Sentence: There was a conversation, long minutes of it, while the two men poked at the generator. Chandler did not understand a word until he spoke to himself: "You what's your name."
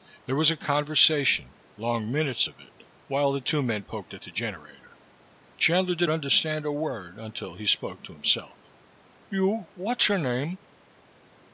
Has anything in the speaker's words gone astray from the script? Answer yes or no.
yes